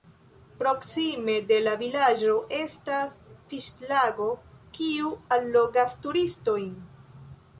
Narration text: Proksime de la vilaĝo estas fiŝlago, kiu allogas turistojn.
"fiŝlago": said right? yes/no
yes